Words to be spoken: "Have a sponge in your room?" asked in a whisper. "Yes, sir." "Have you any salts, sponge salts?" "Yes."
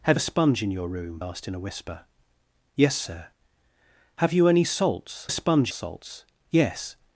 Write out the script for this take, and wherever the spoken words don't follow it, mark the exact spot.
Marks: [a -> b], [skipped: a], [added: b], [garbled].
"Have a sponge in your room?" asked in a whisper. "Yes, sir." "Have you any salts, sponge salts?" "Yes."